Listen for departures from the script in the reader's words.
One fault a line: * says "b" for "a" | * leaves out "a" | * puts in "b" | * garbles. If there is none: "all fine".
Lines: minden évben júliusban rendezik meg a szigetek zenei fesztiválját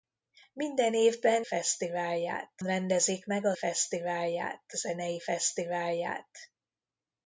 * says "fesztiválját" for "júliusban"
* says "fesztiválját" for "szigetek"